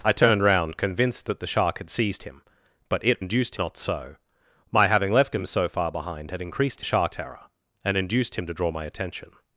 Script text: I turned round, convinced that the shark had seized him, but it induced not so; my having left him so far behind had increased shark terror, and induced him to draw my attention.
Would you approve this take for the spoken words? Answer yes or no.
yes